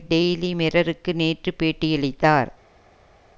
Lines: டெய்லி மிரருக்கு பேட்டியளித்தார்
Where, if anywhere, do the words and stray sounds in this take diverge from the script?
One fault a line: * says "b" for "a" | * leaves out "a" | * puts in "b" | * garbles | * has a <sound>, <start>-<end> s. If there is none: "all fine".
* puts in "நேற்று"